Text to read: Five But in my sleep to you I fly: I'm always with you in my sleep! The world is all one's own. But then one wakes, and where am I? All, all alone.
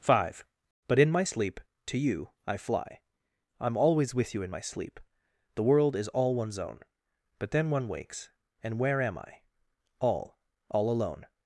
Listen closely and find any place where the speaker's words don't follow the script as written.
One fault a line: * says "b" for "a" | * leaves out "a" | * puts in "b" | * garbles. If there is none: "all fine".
all fine